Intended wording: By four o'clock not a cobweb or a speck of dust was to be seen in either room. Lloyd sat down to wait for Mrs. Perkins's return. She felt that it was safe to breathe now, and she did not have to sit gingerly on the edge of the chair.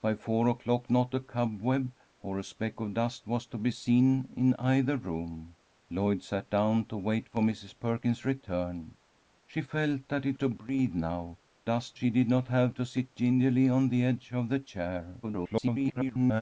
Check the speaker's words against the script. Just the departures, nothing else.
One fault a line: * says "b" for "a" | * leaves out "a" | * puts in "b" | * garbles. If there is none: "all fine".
* leaves out "was safe"
* says "dust" for "and"
* garbles